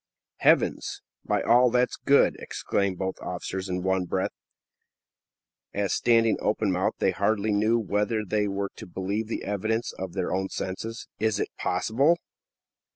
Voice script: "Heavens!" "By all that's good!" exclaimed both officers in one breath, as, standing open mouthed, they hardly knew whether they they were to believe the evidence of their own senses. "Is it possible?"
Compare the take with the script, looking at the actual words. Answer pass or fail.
fail